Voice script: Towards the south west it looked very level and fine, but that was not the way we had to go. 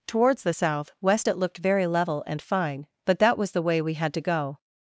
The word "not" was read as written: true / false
false